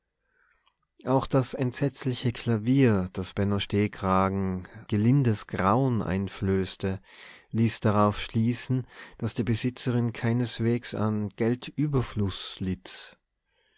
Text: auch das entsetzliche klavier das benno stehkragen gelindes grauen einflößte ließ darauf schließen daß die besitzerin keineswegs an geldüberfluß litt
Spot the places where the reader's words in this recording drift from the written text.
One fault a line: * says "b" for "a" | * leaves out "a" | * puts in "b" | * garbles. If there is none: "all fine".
all fine